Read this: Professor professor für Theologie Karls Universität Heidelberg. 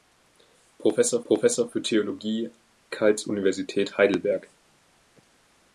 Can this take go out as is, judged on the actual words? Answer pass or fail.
pass